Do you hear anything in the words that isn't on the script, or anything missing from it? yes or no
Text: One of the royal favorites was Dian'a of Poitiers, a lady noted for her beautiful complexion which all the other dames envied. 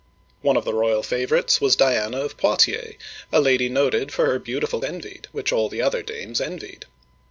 yes